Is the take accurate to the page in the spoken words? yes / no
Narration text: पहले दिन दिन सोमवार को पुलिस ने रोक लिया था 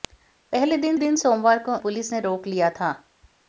yes